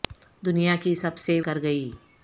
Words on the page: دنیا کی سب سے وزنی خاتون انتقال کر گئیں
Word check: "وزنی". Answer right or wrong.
wrong